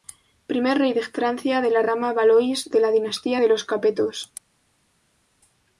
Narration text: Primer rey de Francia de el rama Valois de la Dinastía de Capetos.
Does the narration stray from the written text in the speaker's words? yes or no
yes